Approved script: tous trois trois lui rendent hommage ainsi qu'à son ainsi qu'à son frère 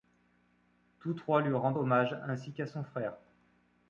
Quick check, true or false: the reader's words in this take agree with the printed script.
false